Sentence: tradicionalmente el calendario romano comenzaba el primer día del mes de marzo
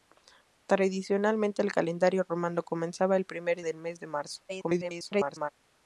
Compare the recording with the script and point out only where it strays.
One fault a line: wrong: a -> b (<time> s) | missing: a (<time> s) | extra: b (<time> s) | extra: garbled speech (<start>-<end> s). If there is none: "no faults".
missing: día (3.6 s)
extra: garbled speech (4.5-5.5 s)